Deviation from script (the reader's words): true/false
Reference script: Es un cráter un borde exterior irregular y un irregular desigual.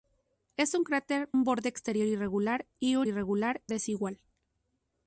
false